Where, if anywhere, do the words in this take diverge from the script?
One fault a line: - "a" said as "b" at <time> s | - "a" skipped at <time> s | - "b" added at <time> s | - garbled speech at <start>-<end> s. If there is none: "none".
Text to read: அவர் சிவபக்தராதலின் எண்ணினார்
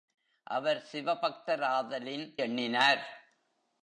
none